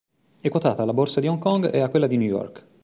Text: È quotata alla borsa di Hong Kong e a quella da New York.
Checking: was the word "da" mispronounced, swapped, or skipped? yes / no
yes